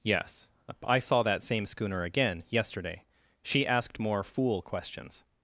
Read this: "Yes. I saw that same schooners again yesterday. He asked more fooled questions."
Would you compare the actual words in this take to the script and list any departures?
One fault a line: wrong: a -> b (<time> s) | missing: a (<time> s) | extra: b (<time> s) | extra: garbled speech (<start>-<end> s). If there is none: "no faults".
wrong: schooners -> schooner (1.7 s)
wrong: He -> She (3.4 s)
wrong: fooled -> fool (4.2 s)